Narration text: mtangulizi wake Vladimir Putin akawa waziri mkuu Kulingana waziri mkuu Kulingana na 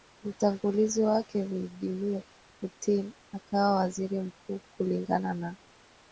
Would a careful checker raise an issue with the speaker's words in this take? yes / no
yes